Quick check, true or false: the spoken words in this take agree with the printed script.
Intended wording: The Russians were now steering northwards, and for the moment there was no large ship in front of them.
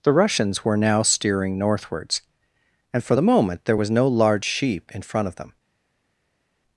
false